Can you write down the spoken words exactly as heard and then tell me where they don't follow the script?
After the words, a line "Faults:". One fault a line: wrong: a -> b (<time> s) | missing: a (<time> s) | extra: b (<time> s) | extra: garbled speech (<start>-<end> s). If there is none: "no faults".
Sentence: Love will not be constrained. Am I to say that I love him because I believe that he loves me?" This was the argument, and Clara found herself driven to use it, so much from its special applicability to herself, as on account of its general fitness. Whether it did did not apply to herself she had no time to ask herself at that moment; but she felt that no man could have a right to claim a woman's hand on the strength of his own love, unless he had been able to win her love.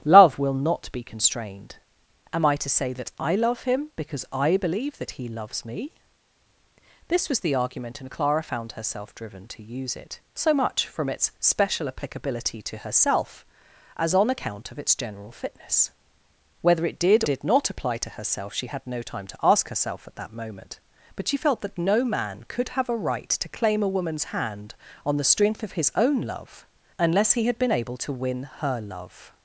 Love will not be constrained. Am I to say that I love him because I believe that he loves me?" This was the argument, and Clara found herself driven to use it, so much from its special applicability to herself, as on account of its general fitness. Whether it did did not apply to herself she had no time to ask herself at that moment; but she felt that no man could have a right to claim a woman's hand on the strength of his own love, unless he had been able to win her love.
Faults:
no faults